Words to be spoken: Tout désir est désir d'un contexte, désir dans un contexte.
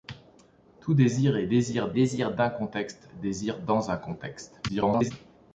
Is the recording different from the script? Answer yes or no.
yes